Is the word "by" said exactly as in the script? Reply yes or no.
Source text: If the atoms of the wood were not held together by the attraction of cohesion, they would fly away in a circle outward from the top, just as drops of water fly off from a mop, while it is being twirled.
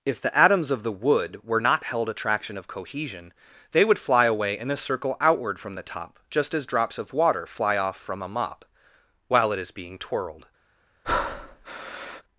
no